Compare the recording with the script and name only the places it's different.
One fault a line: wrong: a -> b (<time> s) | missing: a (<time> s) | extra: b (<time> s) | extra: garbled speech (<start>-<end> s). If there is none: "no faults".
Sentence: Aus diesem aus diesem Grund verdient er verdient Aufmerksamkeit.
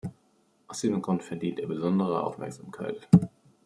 missing: aus diesem (1.0 s)
wrong: verdient -> besondere (1.6 s)